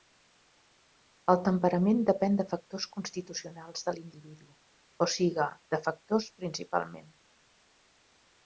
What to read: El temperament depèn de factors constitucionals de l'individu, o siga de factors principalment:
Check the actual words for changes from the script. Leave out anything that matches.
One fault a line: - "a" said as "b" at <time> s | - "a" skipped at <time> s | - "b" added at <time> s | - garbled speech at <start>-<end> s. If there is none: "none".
none